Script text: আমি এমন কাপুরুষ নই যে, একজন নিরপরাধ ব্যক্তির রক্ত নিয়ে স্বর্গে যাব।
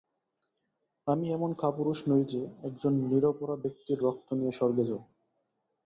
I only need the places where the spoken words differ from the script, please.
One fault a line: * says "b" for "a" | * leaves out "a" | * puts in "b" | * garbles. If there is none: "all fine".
all fine